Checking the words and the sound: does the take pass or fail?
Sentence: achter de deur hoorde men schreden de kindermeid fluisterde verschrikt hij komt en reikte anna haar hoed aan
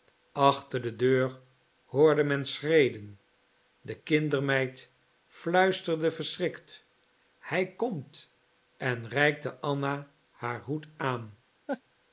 fail